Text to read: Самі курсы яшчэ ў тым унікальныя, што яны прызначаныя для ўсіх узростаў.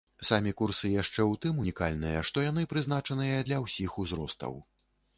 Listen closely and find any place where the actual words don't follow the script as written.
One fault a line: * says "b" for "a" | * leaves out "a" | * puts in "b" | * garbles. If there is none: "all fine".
all fine